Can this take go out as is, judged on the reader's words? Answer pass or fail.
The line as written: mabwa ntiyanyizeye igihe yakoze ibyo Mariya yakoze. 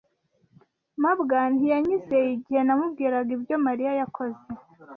fail